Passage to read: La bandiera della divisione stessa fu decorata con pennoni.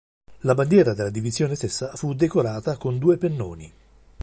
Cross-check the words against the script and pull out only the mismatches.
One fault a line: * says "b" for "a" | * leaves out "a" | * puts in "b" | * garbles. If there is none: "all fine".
* puts in "due"